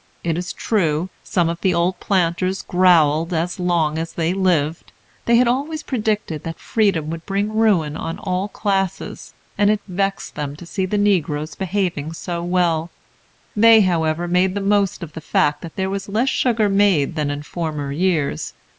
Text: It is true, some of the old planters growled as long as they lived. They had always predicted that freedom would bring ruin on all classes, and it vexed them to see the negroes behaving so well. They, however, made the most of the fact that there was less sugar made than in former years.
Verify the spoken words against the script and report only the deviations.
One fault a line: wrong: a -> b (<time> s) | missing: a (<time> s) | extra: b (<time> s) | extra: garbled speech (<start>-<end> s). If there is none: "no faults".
no faults